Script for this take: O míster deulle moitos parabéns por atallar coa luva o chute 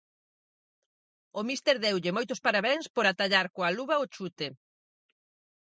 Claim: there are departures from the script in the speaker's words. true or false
false